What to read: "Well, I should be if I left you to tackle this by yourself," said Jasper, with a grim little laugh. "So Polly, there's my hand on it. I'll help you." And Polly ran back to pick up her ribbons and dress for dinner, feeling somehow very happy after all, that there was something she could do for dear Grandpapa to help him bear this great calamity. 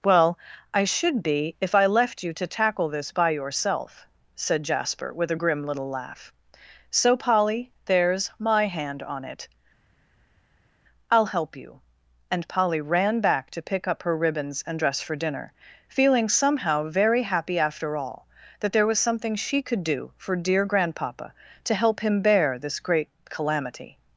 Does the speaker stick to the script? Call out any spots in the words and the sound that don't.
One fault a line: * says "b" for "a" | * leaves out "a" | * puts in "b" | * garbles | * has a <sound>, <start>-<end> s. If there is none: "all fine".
all fine